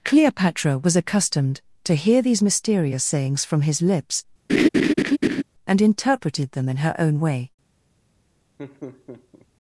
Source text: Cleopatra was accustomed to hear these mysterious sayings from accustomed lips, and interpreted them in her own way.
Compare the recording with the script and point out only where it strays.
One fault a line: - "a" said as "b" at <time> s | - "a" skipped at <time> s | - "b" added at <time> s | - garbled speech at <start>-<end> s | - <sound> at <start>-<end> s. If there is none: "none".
- "accustomed" said as "his" at 3.6 s
- laugh at 4.5-5.4 s
- laugh at 8.6-9.5 s